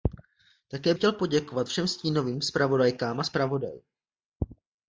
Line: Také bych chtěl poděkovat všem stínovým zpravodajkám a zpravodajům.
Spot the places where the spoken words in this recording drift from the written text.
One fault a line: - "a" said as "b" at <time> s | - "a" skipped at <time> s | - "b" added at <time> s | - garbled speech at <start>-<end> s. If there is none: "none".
- "bych" skipped at 0.9 s